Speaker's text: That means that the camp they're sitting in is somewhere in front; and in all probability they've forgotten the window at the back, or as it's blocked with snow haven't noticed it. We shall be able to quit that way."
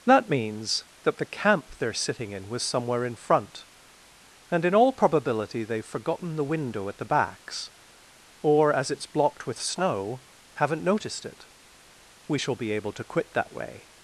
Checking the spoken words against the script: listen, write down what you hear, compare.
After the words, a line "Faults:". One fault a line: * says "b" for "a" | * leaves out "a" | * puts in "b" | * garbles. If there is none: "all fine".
That means that the camp they're sitting in was somewhere in front; and in all probability they've forgotten the window at the backs, or as it's blocked with snow haven't noticed it. We shall be able to quit that way."
Faults:
* says "was" for "is"
* says "backs" for "back"